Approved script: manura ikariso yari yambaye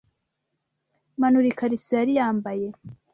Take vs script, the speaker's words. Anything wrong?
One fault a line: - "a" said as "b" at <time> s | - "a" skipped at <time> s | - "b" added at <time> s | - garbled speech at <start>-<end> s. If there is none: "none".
none